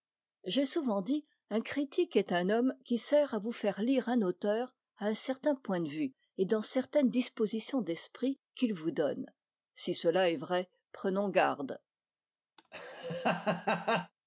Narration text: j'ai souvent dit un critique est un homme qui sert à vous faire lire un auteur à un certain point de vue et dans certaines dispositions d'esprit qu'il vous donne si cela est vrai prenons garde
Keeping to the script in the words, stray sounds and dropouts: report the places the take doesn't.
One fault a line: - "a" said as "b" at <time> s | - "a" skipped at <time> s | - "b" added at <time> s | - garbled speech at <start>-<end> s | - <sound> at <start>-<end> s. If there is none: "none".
- laugh at 12.6-14.1 s